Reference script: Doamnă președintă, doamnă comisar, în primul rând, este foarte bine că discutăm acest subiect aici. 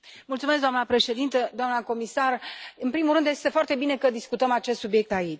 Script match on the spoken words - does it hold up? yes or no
yes